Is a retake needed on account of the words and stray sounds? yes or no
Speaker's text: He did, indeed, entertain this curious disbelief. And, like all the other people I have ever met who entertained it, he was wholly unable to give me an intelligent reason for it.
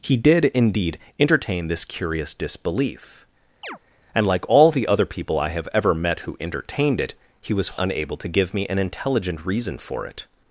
yes